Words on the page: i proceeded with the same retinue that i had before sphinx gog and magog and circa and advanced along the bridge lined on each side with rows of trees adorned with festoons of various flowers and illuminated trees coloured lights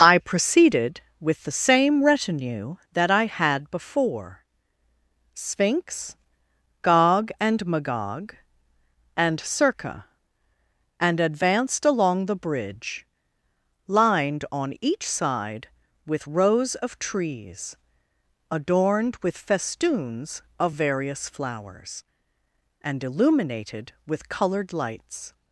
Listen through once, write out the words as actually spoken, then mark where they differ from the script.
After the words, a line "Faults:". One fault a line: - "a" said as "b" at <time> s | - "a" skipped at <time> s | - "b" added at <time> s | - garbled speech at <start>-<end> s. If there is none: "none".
i proceeded with the same retinue that i had before sphinx gog and magog and circa and advanced along the bridge lined on each side with rows of trees adorned with festoons of various flowers and illuminated with coloured lights
Faults:
- "trees" said as "with" at 24.1 s